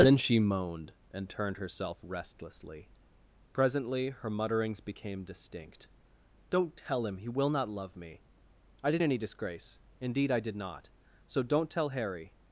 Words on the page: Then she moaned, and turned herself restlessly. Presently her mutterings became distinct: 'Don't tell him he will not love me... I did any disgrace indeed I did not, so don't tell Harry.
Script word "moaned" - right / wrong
right